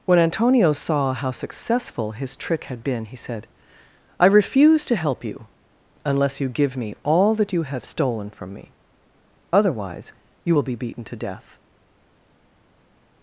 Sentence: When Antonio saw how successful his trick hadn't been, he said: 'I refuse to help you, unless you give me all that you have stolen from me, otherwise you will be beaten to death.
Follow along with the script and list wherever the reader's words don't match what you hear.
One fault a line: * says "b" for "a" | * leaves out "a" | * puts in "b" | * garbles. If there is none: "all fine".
* says "had" for "hadn't"